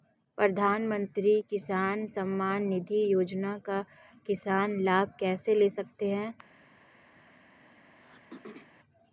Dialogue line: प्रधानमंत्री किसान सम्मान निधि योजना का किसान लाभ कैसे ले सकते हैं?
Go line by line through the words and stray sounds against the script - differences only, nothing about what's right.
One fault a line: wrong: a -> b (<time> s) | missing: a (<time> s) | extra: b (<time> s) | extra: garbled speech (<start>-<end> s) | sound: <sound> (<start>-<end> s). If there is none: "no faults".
sound: throat clearing (7.2-8.7 s)